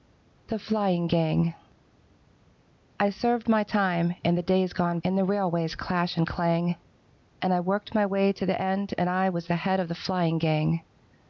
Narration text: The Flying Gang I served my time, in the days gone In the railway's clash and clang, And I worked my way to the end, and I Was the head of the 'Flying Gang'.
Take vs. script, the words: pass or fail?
pass